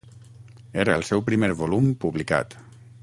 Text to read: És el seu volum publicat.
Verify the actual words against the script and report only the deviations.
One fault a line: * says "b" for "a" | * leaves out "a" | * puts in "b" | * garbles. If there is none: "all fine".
* says "Era" for "És"
* puts in "primer"